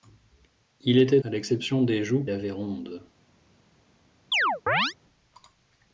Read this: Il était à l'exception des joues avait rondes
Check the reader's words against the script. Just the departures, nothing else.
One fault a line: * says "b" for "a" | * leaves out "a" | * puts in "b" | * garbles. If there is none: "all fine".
all fine